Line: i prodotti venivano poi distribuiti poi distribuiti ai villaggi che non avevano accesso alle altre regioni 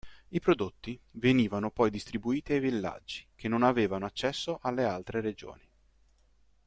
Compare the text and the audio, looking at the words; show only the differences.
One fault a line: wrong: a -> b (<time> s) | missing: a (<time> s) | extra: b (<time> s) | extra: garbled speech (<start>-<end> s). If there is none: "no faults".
missing: poi distribuiti (2.5 s)